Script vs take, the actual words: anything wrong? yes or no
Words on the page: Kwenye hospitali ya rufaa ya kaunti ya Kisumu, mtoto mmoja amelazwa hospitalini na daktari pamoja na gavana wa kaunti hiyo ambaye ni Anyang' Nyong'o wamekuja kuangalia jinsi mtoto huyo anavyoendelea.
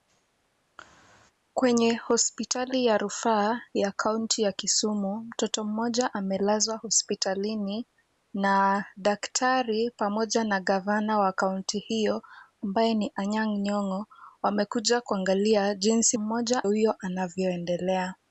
yes